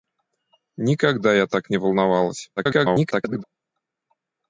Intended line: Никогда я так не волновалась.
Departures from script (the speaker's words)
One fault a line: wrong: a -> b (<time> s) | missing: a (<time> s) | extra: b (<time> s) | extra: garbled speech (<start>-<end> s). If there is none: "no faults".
extra: garbled speech (2.6-3.4 s)